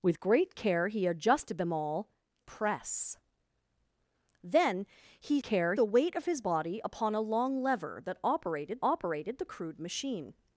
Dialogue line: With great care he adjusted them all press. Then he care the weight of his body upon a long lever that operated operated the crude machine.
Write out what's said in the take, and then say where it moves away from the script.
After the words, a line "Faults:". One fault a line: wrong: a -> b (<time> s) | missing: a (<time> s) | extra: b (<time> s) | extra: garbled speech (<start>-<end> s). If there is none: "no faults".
With great care he adjusted them all press. Then he care the weight of his body upon a long lever that operated operated the crude machine.
Faults:
no faults